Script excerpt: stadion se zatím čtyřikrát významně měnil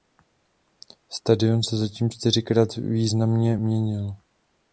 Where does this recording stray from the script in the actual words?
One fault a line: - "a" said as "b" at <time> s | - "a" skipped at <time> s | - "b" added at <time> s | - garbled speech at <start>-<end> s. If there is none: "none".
none